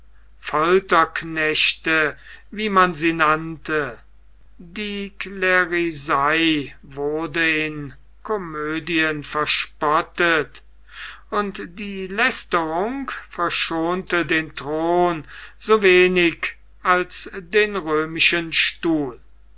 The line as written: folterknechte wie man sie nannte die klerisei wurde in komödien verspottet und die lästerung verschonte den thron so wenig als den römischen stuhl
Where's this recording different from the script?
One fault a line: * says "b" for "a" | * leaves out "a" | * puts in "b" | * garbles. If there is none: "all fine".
all fine